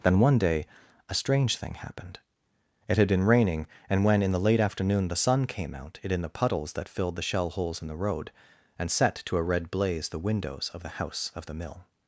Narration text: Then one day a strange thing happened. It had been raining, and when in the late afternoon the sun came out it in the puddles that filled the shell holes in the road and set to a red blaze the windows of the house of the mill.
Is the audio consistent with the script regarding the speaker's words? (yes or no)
yes